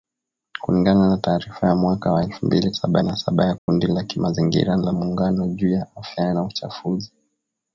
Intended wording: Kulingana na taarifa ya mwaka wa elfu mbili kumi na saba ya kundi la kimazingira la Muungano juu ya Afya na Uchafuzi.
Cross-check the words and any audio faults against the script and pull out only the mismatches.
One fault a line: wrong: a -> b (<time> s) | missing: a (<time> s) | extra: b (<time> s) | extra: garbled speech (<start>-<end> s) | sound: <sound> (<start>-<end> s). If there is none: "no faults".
wrong: kumi -> saba (2.7 s)
sound: dropout (3.6-3.7 s)